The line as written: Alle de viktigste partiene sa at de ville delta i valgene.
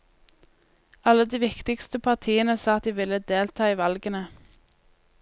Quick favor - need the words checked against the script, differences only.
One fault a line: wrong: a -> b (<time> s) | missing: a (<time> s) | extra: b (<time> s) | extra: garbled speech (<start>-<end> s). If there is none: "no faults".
no faults